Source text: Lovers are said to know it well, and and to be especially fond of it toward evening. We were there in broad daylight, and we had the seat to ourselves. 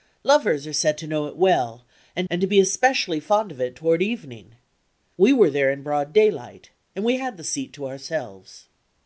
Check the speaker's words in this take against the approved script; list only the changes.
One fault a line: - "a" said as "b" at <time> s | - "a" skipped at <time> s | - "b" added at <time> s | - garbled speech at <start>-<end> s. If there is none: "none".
none